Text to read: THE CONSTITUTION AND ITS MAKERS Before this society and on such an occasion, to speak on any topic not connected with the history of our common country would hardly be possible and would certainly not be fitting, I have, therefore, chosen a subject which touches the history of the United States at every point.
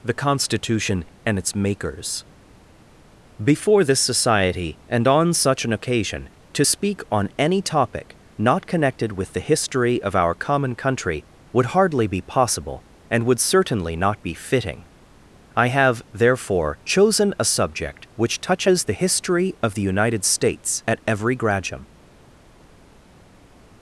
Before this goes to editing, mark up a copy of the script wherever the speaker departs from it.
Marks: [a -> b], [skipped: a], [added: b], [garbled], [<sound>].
THE CONSTITUTION AND ITS MAKERS Before this society and on such an occasion, to speak on any topic not connected with the history of our common country would hardly be possible and would certainly not be fitting, I have, therefore, chosen a subject which touches the history of the United States at every [point. -> gradum]